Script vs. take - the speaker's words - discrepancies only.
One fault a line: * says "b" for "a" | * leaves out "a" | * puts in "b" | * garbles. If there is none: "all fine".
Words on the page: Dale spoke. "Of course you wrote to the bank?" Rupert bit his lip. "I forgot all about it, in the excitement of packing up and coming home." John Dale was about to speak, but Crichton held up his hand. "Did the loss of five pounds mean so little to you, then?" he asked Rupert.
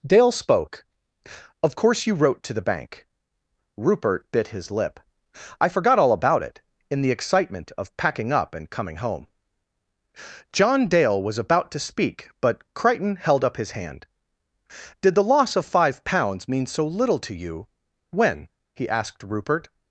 * says "when" for "then"